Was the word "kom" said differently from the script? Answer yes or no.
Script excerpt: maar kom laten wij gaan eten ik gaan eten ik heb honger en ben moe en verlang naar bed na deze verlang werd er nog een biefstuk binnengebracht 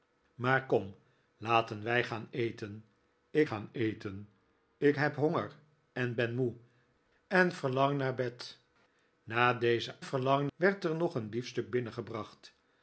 no